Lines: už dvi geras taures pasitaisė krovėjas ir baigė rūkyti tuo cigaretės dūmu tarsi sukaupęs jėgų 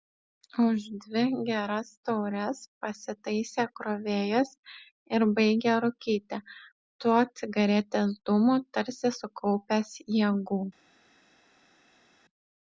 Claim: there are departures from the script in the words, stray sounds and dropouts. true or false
false